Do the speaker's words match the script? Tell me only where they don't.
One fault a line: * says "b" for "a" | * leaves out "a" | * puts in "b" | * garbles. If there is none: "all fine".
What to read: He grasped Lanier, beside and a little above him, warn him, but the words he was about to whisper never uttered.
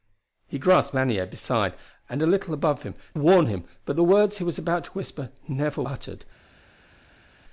all fine